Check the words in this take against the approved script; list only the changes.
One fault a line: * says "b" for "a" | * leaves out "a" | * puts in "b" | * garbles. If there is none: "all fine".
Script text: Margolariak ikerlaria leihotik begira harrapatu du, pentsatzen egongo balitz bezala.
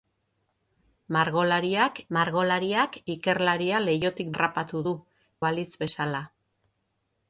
* puts in "margolariak"
* leaves out "begira"
* leaves out "pentsatzen egongo"